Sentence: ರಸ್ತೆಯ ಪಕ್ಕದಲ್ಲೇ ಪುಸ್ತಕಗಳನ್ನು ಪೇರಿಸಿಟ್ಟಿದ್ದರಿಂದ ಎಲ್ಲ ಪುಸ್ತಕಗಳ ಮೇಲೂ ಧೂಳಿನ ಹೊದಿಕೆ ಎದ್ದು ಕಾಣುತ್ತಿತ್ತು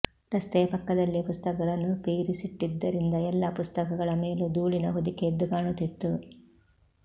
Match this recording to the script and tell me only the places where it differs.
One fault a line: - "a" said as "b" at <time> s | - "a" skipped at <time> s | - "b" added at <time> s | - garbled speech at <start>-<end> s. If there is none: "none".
none